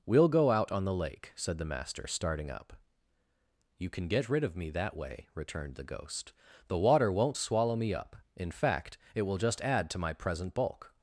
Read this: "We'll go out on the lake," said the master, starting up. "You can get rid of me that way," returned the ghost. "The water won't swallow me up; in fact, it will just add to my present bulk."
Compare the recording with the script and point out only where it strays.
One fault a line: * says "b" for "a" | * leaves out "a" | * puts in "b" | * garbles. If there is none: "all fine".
all fine